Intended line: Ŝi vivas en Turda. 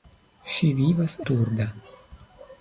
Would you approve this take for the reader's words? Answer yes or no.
no